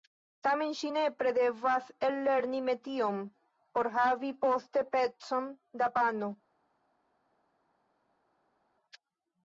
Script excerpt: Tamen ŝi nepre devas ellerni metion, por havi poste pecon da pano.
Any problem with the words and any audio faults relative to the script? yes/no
no